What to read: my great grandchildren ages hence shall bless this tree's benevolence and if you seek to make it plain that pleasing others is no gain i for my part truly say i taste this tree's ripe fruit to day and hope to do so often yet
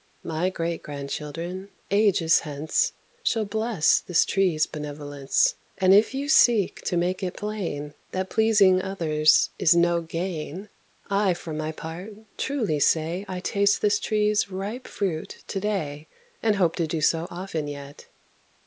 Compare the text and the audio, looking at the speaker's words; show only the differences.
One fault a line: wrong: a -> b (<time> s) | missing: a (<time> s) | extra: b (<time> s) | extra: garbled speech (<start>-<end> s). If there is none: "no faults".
no faults